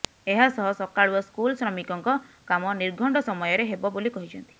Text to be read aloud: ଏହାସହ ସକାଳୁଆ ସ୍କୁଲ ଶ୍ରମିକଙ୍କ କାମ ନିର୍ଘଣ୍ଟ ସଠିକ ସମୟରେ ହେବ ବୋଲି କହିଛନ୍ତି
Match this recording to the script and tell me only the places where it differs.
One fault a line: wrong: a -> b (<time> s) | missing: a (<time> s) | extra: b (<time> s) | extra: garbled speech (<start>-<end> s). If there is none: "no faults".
missing: ସଠିକ (3.2 s)